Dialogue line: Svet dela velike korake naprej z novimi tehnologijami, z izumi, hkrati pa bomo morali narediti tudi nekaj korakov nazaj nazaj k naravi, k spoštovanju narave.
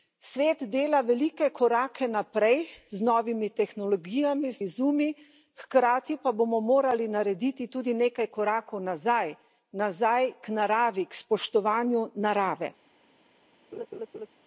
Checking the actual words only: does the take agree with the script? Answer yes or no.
yes